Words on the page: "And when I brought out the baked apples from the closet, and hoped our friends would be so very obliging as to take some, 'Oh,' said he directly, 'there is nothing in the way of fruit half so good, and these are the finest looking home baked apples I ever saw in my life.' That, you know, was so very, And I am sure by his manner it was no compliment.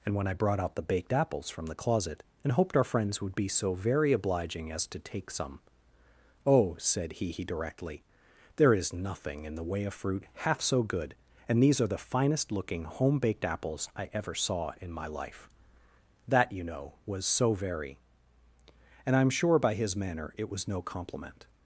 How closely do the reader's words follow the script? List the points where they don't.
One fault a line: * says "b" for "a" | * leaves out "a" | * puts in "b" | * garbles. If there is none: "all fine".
* puts in "he"